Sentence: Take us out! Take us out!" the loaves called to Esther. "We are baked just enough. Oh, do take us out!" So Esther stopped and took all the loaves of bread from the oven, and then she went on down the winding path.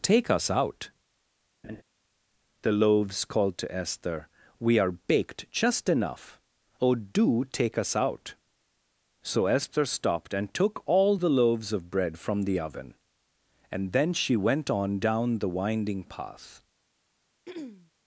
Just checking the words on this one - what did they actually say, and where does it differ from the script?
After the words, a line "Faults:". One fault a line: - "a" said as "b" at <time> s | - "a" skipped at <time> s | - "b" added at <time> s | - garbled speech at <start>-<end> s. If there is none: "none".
Take us out!" the loaves called to Esther. "We are baked just enough. Oh, do take us out!" So Esther stopped and took all the loaves of bread from the oven, and then she went on down the winding path.
Faults:
- "Take us out" skipped at 0.9 s